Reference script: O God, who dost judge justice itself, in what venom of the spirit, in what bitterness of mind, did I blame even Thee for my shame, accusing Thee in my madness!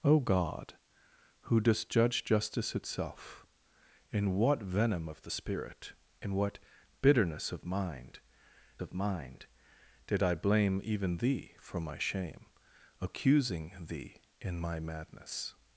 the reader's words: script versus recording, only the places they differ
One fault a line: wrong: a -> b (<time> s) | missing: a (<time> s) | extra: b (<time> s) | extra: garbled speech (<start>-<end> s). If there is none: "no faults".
extra: of mind (8.8 s)